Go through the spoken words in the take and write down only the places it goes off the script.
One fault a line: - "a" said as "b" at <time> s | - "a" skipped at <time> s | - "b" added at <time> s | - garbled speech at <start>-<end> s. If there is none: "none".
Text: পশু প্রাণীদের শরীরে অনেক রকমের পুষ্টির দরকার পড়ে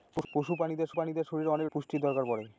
- "প্রাণীদের" added at 0.9 s
- "রকমের" skipped at 1.7 s